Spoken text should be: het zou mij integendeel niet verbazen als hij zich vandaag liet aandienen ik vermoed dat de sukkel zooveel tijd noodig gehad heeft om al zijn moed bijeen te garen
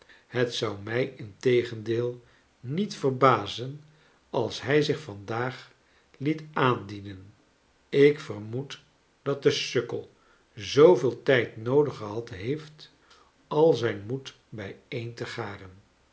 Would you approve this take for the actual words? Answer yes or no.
no